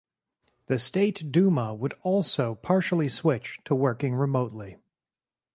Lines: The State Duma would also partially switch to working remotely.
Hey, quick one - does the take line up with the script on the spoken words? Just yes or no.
yes